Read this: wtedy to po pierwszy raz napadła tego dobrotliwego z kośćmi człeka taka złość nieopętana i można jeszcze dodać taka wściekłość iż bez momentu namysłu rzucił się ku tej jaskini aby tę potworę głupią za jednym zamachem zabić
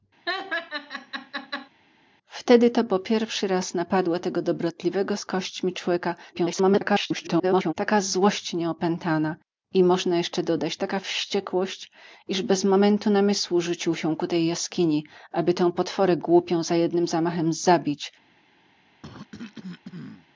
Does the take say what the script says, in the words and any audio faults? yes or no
no